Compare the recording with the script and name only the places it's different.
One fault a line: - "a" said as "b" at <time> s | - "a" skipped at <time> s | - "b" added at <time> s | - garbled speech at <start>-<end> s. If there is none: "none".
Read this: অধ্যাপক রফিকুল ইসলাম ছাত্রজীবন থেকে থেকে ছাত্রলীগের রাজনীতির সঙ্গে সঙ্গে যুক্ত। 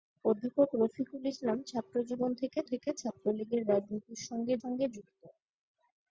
none